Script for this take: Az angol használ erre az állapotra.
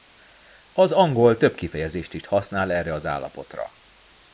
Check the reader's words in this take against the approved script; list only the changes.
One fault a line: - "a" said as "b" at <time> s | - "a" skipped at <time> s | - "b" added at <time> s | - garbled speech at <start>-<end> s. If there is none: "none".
- "több kifejezést is" added at 1.4 s